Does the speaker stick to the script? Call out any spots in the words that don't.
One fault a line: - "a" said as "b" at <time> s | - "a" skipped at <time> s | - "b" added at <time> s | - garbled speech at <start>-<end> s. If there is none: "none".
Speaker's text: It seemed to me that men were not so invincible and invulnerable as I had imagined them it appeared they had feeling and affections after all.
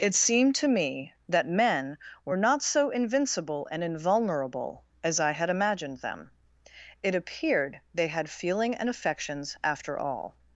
none